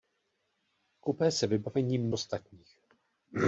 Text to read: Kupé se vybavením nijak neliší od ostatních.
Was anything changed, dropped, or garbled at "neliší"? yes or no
yes